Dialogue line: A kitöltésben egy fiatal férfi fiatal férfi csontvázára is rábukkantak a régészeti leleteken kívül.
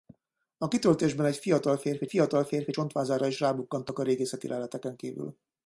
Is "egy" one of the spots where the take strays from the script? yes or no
no